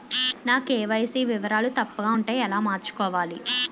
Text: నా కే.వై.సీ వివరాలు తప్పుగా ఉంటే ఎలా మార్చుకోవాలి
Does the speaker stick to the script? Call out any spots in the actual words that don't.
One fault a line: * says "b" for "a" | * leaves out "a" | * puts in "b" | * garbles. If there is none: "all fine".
all fine